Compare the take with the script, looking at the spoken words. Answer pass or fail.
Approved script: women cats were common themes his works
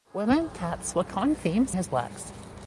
pass